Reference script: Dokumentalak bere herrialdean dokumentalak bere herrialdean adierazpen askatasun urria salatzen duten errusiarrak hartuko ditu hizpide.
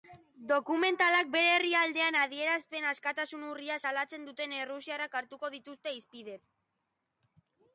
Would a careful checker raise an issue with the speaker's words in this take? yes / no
yes